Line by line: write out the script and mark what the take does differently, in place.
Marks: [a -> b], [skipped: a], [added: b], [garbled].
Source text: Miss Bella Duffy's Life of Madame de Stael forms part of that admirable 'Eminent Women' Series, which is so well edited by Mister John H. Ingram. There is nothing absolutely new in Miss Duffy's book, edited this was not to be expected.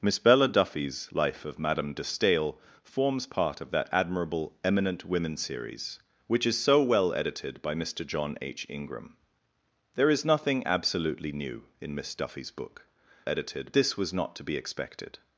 Miss Bella Duffy's Life of Madame de Stael forms part of that admirable 'Eminent Women' Series, which is so well edited by Mister John H. Ingram. There is nothing absolutely new in Miss Duffy's book, edited this was not to be expected.